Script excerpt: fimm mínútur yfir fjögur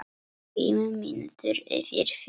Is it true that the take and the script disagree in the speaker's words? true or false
false